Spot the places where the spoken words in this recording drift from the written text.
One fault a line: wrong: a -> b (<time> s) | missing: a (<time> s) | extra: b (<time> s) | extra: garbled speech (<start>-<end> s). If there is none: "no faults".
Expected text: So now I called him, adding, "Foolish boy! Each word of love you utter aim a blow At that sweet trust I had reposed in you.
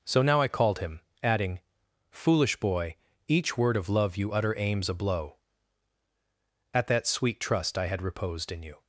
wrong: aim -> aims (4.6 s)